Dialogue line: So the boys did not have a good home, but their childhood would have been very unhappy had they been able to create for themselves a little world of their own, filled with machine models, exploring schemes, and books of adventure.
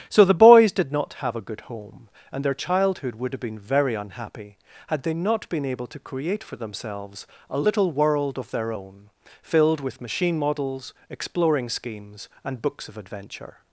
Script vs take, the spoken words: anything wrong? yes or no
yes